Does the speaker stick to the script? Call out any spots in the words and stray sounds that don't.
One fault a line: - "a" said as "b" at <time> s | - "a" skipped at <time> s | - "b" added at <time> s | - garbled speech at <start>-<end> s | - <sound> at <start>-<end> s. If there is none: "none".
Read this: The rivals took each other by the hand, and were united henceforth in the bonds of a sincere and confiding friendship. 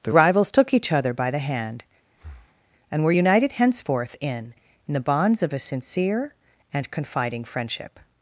- breath at 2.1-2.6 s
- "in" added at 4.9 s